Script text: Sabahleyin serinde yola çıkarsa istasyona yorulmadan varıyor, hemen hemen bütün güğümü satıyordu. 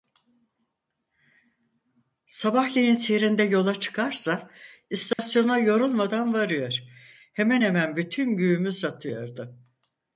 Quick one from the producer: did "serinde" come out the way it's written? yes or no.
yes